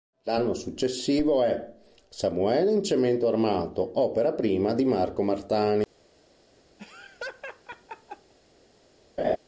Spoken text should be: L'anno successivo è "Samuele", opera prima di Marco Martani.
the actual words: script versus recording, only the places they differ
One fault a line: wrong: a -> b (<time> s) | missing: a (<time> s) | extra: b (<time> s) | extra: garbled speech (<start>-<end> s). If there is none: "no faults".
extra: in Cemento armato (2.7 s)